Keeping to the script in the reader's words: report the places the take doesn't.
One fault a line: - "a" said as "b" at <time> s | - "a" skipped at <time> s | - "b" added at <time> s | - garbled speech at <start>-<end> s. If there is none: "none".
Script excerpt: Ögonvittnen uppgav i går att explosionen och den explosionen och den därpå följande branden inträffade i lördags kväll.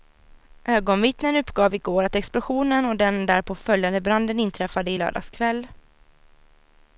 - "explosionen och den" skipped at 3.2 s